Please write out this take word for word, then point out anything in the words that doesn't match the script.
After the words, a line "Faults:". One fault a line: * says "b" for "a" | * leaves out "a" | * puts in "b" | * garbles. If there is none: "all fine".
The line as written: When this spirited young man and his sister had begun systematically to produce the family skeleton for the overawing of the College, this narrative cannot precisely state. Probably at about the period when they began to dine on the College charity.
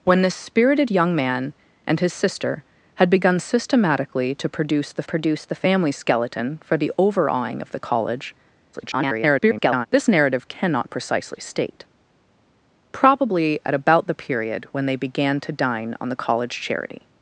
When this spirited young man and his sister had begun systematically to produce the produce the family skeleton for the overawing of the College, [garbled] this narrative cannot precisely state. Probably at about the period when they began to dine on the College charity.
Faults:
* puts in "produce the"
* garbles